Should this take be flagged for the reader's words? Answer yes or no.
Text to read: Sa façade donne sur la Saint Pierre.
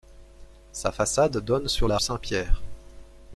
no